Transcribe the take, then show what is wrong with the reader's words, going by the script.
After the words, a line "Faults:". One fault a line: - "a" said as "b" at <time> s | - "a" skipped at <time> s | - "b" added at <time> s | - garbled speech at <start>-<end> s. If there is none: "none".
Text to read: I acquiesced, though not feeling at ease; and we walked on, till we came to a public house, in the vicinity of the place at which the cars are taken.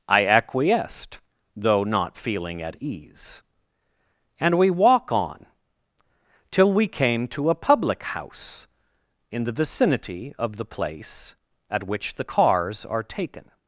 I acquiesced, though not feeling at ease; and we walk on, till we came to a public house, in the vicinity of the place at which the cars are taken.
Faults:
- "walked" said as "walk" at 4.7 s